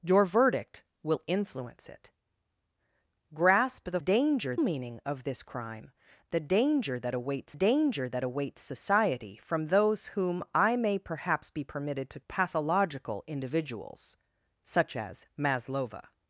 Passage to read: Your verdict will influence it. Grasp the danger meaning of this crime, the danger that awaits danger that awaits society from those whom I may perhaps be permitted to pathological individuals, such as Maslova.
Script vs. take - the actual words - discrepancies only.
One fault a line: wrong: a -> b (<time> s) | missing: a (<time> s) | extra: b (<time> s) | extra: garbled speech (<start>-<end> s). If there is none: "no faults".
no faults